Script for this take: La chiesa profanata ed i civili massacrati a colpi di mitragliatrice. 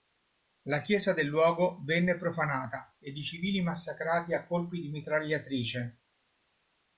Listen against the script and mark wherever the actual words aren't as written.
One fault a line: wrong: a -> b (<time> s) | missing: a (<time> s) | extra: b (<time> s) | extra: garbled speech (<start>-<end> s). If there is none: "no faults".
extra: del luogo venne (1.1 s)